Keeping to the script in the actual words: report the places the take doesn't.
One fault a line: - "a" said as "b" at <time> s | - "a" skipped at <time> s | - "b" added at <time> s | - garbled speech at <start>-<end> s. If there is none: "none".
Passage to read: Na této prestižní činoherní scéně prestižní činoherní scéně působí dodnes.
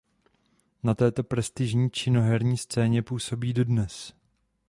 - "prestižní činoherní scéně" skipped at 3.0 s